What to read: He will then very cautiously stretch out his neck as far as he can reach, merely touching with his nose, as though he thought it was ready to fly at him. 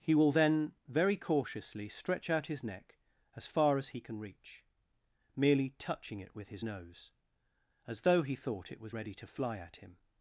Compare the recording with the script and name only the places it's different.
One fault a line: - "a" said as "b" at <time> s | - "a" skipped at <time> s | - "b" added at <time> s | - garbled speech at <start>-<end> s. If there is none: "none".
- "it" added at 6.2 s